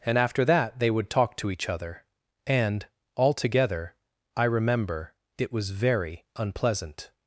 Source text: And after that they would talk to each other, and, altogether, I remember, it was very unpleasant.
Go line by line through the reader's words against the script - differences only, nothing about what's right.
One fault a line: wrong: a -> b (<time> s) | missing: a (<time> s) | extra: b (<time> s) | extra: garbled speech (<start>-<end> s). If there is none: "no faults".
no faults